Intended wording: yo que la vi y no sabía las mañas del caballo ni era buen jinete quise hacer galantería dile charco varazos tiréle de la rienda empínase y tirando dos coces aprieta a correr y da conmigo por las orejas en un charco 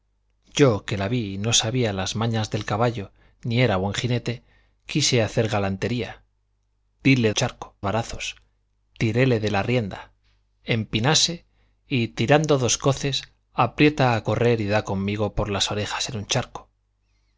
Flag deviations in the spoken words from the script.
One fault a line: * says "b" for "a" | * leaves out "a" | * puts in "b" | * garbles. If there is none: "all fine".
all fine